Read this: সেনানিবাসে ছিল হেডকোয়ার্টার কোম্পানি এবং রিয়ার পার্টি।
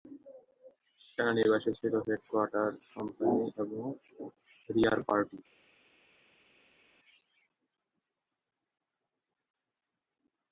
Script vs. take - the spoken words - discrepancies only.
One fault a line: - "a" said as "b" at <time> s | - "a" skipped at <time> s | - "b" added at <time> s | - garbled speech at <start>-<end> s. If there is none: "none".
none